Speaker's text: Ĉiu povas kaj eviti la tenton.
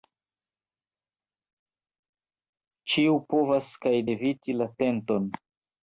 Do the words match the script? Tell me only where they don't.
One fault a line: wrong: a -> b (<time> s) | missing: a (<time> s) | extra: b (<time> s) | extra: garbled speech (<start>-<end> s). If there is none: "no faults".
no faults